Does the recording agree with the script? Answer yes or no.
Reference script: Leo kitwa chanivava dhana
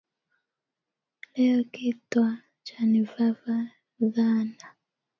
yes